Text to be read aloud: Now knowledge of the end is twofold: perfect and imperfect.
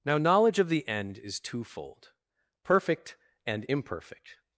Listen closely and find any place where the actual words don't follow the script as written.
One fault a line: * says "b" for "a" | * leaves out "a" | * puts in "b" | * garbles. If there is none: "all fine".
all fine